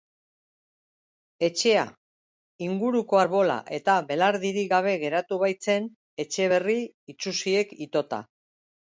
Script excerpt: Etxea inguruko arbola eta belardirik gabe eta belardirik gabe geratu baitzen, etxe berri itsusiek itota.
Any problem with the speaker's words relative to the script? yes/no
yes